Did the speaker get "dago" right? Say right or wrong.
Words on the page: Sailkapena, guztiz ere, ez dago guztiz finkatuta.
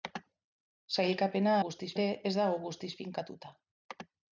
right